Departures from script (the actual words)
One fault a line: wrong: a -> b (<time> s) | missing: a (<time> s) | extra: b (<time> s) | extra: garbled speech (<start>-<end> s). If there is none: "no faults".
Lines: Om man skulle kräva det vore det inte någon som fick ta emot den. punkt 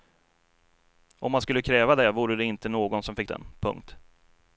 missing: ta emot (3.3 s)